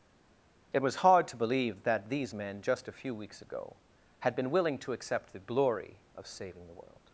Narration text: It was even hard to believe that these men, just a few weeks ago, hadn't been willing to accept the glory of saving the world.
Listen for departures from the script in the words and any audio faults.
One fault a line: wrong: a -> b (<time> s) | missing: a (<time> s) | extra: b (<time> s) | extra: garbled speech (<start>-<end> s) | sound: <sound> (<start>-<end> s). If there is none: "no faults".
missing: even (1.0 s)
wrong: hadn't -> had (4.2 s)